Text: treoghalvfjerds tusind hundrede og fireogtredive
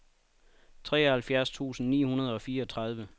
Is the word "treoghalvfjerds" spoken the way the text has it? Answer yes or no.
yes